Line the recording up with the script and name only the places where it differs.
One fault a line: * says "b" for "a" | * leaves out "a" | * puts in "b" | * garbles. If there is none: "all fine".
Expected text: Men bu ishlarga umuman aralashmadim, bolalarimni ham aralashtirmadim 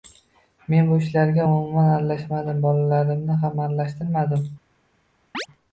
all fine